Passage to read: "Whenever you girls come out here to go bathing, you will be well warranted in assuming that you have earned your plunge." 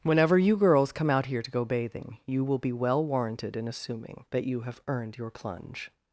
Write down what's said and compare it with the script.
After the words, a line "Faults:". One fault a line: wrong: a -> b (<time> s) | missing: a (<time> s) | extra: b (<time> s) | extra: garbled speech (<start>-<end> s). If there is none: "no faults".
"Whenever you girls come out here to go bathing, you will be well warranted in assuming that you have earned your plunge."
Faults:
no faults